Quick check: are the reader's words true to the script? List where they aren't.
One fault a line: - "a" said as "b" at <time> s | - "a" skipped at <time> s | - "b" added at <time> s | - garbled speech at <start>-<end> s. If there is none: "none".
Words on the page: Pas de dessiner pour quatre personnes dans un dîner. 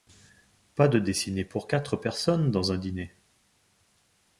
none